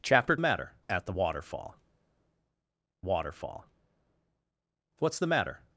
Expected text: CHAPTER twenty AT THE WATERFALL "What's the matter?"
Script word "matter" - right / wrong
right